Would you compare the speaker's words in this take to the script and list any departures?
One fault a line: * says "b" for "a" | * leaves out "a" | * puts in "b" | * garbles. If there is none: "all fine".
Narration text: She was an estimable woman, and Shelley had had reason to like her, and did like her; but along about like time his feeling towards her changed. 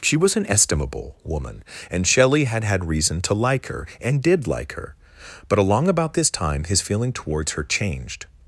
* says "this" for "like"